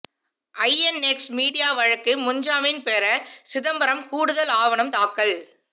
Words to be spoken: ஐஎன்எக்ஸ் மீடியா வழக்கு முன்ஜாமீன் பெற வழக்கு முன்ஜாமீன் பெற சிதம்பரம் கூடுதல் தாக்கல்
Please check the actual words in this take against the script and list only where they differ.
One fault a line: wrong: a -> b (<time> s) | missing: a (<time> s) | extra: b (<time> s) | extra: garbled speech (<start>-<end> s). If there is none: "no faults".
missing: வழக்கு முன்ஜாமீன் பெற (3.0 s)
extra: ஆவணம் (4.6 s)